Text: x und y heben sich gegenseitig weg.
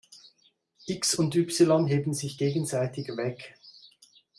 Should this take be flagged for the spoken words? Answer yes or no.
no